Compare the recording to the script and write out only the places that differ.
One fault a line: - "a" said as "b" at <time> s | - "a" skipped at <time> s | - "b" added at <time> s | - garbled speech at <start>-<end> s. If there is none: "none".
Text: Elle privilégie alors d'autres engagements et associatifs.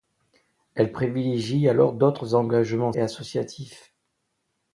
none